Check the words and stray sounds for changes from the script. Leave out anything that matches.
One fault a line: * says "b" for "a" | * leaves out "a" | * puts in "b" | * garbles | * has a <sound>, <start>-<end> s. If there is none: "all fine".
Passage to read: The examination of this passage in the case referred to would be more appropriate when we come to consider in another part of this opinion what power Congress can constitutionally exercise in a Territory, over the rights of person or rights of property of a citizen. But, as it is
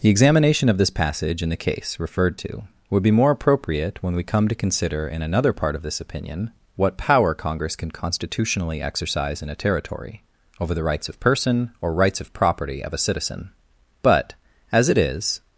all fine